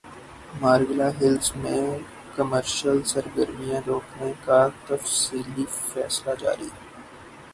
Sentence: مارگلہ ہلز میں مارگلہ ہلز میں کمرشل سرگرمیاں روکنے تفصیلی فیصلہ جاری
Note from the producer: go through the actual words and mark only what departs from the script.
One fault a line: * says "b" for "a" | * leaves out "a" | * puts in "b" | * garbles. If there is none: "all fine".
* leaves out "مارگلہ ہلز میں"
* puts in "کا"